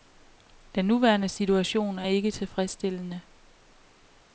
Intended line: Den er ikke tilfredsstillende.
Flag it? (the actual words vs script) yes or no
yes